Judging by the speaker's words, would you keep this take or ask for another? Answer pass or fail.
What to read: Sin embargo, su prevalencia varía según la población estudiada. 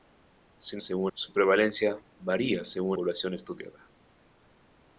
fail